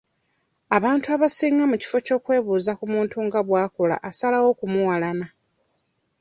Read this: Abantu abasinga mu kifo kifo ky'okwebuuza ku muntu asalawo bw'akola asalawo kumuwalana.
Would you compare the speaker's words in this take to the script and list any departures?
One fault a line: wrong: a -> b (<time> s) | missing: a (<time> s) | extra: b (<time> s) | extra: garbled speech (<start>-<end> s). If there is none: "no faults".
missing: kifo (2.0 s)
wrong: asalawo -> nga (3.3 s)